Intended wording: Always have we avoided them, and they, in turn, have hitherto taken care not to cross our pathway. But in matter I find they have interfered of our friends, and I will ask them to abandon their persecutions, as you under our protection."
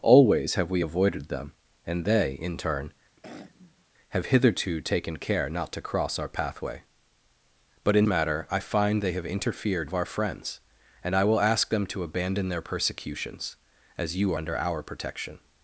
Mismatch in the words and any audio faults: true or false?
true